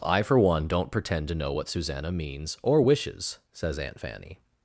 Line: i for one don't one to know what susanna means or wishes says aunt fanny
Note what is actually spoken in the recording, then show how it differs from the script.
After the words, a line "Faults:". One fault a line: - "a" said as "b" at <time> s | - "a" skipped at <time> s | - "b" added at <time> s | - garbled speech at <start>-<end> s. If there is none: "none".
i for one don't pretend to know what susanna means or wishes says aunt fanny
Faults:
- "one" said as "pretend" at 0.9 s